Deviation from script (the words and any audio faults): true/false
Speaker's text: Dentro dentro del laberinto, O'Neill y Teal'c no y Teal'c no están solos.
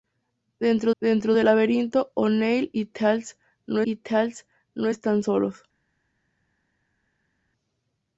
false